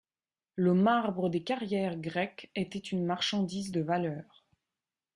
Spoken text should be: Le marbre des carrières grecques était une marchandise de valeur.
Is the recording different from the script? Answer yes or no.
no